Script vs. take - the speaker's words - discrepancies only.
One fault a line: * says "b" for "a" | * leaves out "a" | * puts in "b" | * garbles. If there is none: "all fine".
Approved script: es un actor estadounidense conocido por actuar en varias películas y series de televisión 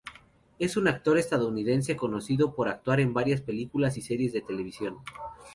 all fine